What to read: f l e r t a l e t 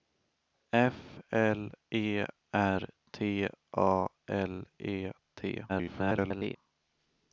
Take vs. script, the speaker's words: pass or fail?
fail